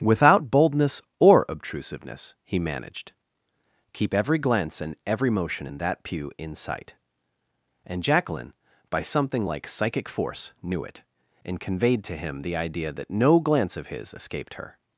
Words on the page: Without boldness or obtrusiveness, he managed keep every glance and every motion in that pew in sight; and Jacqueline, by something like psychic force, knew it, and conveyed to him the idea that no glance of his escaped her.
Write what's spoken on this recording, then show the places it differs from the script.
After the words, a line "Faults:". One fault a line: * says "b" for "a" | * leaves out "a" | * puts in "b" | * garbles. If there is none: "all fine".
Without boldness or obtrusiveness, he managed keep every glance and every motion in that pew in sight; and Jacqueline, by something like psychic force, knew it, and conveyed to him the idea that no glance of his escaped her.
Faults:
all fine